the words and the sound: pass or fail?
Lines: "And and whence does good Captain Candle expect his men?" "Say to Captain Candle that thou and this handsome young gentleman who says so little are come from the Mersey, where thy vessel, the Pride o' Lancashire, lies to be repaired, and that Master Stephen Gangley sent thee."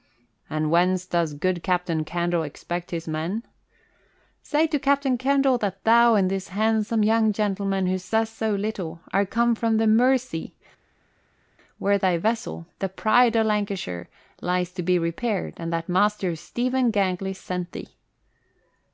fail